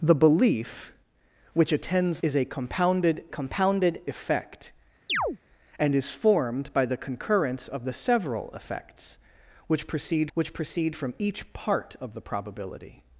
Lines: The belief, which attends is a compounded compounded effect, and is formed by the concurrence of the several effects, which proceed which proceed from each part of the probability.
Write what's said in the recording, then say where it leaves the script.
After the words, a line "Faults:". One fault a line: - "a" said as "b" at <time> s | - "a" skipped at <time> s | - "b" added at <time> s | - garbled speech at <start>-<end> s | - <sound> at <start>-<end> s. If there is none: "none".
The belief, which attends is a compounded compounded effect, and is formed by the concurrence of the several effects, which proceed which proceed from each part of the probability.
Faults:
- chirp at 5.1-5.4 s